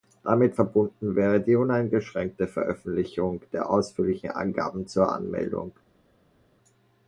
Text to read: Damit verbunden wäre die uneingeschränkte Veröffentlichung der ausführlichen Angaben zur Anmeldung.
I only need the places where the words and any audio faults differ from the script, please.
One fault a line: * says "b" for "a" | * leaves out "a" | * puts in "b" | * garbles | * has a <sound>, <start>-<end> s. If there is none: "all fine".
all fine